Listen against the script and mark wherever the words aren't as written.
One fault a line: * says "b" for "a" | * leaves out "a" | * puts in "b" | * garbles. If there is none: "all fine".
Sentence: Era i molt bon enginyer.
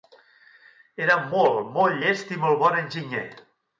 * puts in "molt molt llest"